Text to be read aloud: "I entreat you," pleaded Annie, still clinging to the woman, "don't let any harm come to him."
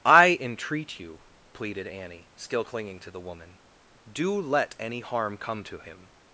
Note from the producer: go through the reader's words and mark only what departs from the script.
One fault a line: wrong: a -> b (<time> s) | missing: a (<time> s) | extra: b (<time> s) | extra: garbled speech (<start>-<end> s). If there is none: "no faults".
wrong: don't -> do (4.1 s)